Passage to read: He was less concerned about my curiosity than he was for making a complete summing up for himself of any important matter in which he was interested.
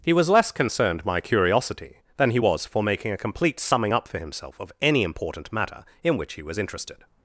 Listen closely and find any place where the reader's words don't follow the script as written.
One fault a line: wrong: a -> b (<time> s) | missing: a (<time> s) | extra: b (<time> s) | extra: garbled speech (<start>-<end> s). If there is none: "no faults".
missing: about (1.1 s)